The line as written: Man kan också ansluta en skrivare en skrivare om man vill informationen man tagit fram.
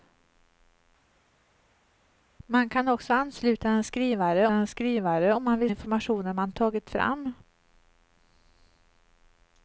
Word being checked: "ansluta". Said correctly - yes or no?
yes